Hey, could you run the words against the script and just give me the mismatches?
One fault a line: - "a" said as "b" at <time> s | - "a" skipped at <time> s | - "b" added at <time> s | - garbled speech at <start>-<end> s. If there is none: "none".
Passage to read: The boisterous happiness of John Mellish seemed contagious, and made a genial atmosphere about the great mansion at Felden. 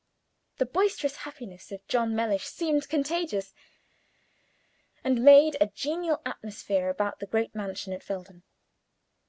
none